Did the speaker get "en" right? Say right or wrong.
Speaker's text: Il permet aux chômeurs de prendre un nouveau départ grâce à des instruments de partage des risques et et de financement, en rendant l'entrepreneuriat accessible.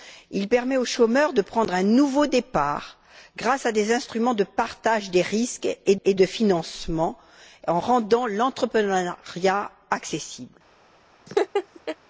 right